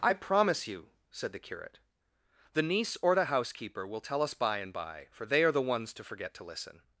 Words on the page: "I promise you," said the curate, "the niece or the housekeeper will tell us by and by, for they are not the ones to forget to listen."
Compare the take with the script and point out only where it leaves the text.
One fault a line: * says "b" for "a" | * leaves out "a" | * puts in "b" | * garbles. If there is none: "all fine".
* leaves out "not"